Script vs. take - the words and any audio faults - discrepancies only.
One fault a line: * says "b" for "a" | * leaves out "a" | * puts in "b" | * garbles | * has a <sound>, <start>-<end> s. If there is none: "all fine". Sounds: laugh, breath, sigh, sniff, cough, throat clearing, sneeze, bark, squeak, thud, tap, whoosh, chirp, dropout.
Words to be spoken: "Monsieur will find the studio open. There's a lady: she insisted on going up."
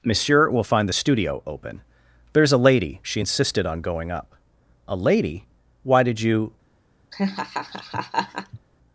* puts in "A lady Why did you"
* has a laugh, 7.1-8.6 s